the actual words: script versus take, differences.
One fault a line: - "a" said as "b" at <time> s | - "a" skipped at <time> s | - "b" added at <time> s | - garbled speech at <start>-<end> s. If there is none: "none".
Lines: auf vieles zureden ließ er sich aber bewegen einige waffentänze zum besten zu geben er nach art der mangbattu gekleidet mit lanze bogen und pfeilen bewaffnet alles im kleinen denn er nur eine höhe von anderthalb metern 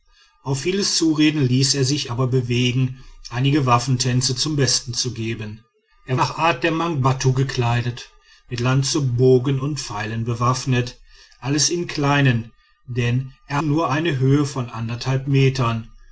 none